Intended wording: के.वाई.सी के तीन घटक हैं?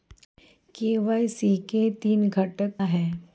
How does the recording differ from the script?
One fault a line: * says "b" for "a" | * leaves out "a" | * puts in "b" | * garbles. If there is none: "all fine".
all fine